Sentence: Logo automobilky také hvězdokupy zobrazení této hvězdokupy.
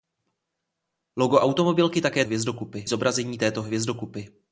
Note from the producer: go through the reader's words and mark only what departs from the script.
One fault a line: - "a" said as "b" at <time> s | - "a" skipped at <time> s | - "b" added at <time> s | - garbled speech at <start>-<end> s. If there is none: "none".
none